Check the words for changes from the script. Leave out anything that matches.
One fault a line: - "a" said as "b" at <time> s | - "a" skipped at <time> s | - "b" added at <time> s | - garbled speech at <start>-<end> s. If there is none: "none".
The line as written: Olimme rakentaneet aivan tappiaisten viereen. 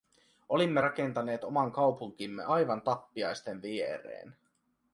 - "oman kaupunkimme" added at 1.4 s